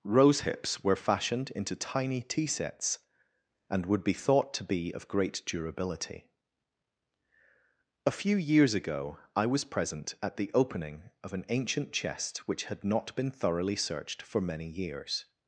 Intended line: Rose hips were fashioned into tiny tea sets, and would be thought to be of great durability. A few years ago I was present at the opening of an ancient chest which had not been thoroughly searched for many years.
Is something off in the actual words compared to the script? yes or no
no